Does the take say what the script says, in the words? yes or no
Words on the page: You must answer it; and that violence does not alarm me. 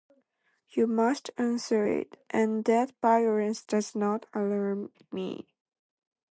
yes